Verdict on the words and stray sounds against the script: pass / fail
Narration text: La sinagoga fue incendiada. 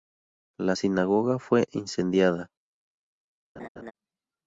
fail